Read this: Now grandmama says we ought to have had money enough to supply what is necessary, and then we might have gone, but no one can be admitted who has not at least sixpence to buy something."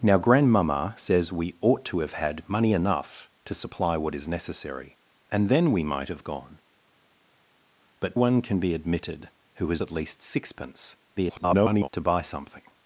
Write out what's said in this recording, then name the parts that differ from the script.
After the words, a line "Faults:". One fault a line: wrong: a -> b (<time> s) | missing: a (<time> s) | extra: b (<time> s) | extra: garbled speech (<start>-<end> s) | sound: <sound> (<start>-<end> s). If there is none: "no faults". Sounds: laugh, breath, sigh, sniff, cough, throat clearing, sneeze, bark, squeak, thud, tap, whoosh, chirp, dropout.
Now grandmama says we ought to have had money enough to supply what is necessary, and then we might have gone, but one can be admitted who has at least sixpence [garbled] to buy something."
Faults:
missing: no (8.2 s)
missing: not (9.8 s)
extra: garbled speech (11.2-11.9 s)